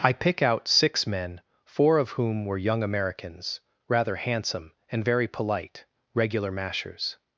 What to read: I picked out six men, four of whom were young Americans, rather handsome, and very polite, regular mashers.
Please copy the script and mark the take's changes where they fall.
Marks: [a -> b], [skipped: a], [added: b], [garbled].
I [picked -> pick] out six men, four of whom were young Americans, rather handsome, and very polite, regular mashers.